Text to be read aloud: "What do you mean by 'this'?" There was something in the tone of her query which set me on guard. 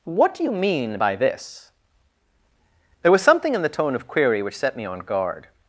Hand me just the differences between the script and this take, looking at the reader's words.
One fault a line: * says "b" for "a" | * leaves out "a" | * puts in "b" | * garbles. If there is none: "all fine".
* leaves out "her"